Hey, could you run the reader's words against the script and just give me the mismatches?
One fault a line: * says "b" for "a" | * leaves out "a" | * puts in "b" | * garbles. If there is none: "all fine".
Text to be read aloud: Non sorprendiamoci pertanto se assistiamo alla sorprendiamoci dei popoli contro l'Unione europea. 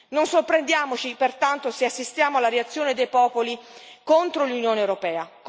* says "reazione" for "sorprendiamoci"